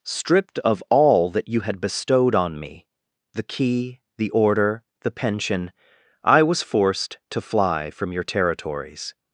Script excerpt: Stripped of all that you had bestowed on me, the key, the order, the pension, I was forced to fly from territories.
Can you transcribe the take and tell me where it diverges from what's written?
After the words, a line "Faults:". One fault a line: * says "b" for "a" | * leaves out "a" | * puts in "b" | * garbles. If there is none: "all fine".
Stripped of all that you had bestowed on me, the key, the order, the pension, I was forced to fly from your territories.
Faults:
* puts in "your"